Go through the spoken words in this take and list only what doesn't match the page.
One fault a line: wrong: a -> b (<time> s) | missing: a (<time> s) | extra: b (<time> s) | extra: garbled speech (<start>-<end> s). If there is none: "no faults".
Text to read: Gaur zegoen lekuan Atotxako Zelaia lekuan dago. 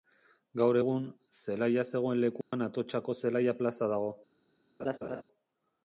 extra: egun zelaia (0.8 s)
wrong: lekuan -> plaza (3.6 s)